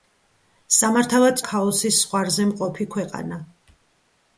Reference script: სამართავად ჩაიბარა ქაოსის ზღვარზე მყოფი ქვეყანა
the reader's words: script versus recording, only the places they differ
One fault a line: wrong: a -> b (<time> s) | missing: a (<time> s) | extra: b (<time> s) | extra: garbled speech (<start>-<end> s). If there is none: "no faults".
missing: ჩაიბარა (1.4 s)